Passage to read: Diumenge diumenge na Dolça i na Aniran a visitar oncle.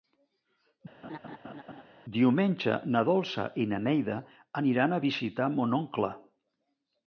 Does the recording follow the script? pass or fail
fail